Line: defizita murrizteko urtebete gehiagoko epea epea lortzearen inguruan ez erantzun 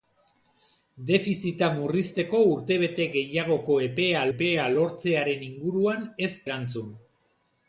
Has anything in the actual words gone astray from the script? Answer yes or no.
no